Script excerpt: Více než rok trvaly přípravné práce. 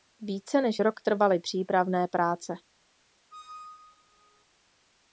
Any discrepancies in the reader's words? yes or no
no